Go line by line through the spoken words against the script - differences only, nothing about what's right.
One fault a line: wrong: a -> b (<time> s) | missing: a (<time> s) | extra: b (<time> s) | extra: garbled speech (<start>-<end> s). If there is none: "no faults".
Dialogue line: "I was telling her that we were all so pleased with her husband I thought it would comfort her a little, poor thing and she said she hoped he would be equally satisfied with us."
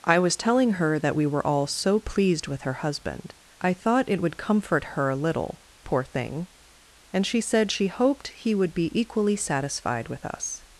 no faults